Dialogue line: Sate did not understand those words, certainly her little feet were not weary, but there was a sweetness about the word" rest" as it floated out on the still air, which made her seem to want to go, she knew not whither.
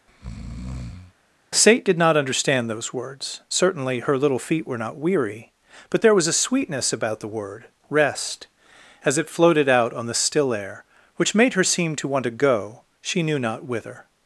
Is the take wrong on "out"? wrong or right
right